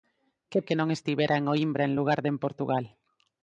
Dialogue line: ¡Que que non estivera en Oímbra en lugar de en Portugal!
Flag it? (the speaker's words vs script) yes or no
no